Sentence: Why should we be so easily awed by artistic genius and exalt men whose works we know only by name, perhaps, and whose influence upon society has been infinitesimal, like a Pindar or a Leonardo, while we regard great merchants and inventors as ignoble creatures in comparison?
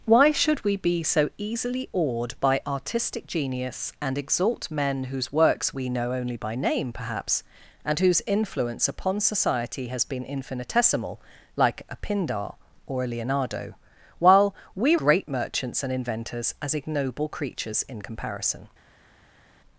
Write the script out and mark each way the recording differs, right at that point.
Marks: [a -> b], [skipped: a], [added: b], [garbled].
Why should we be so easily awed by artistic genius and exalt men whose works we know only by name, perhaps, and whose influence upon society has been infinitesimal, like a Pindar or a Leonardo, while we [skipped: regard] great merchants and inventors as ignoble creatures in comparison?